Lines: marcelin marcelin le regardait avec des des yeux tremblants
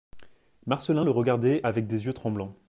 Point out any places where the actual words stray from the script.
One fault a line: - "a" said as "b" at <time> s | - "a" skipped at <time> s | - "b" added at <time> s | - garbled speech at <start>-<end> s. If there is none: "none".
- "marcelin" skipped at 1.1 s
- "des" skipped at 2.0 s